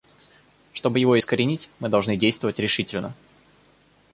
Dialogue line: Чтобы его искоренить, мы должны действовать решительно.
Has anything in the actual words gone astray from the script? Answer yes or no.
no